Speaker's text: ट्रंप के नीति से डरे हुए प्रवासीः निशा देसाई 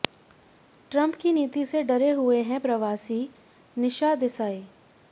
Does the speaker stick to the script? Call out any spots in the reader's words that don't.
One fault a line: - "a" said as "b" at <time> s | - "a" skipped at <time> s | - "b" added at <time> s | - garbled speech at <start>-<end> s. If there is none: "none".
- "के" said as "की" at 1.1 s
- "हैं" added at 2.4 s